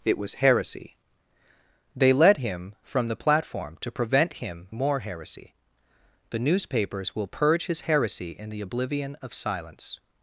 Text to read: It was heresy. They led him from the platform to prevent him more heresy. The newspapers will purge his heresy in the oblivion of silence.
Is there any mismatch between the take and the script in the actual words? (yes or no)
no